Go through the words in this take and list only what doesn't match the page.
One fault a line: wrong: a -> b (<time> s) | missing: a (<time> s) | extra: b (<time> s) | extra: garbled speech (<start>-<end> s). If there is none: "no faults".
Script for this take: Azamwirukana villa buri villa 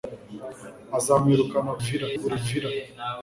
no faults